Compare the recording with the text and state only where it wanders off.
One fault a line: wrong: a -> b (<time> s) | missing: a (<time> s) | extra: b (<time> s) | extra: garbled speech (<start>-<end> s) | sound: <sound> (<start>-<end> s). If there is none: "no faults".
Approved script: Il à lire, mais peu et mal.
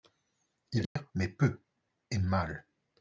sound: dropout (0.9-1.0 s)